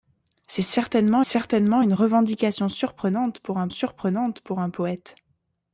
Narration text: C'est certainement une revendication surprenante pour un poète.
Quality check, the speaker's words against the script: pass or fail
fail